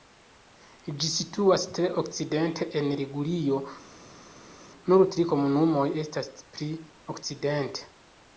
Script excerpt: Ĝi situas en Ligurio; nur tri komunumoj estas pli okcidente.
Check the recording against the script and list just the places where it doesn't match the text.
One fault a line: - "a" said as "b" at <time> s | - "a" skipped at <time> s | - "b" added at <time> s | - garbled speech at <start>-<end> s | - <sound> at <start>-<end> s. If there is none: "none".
- "tre okcidente" added at 1.8 s